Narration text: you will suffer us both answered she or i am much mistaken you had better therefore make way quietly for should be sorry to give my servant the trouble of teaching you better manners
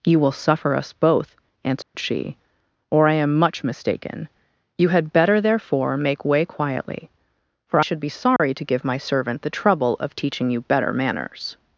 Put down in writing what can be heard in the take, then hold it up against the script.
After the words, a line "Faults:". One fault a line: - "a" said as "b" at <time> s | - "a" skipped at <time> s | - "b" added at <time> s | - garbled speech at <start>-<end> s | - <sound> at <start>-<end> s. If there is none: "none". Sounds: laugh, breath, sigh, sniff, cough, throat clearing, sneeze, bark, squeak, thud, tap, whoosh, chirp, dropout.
you will suffer us both answered she or i am much mistaken you had better therefore make way quietly for should be sorry to give my servant the trouble of teaching you better manners
Faults:
- dropout at 1.8-1.9 s
- dropout at 8.4-8.4 s